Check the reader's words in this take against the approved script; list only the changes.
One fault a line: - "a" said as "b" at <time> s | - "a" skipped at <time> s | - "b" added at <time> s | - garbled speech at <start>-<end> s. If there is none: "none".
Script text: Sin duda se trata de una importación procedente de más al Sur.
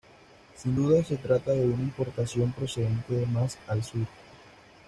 none